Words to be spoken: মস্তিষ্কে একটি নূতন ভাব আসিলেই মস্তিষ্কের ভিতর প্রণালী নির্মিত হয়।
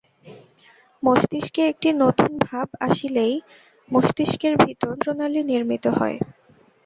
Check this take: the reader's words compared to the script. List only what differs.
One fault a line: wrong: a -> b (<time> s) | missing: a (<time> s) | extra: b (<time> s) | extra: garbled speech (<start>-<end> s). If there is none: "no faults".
no faults